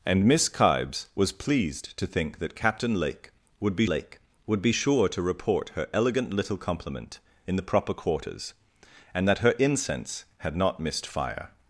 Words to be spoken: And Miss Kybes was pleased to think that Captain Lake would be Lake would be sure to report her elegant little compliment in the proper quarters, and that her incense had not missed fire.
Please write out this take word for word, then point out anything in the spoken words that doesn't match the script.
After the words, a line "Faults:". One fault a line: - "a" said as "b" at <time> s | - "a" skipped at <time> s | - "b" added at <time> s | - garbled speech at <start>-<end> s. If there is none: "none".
And Miss Kybes was pleased to think that Captain Lake would be Lake would be sure to report her elegant little compliment in the proper quarters, and that her incense had not missed fire.
Faults:
none